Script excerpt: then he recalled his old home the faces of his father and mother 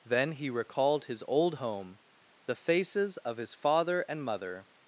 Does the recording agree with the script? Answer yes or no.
yes